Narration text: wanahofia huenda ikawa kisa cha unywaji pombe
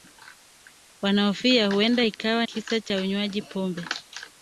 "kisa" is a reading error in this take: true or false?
false